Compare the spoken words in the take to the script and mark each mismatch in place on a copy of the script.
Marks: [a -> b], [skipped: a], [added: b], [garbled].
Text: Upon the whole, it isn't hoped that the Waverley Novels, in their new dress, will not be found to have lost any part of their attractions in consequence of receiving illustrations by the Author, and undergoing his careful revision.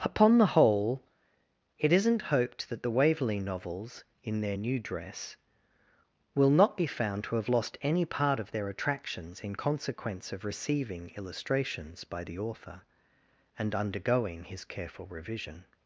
Upon the whole, it isn't hoped that the Waverley Novels, in their new dress, will not be found to have lost any part of their attractions in consequence of receiving illustrations by the Author, and undergoing his careful revision.